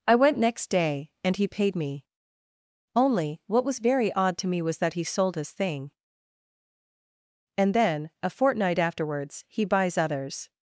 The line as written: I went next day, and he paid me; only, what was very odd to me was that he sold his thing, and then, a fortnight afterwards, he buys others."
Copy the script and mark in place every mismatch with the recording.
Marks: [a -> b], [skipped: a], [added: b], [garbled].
I went next day, and he paid me; only, what was very odd to me was that he sold his thing, and then, a fortnight afterwards, he buys others."